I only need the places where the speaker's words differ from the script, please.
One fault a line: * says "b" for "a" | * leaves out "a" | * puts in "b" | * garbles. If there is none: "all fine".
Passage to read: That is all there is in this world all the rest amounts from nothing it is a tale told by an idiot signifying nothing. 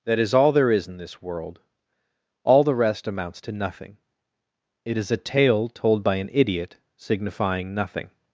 * says "to" for "from"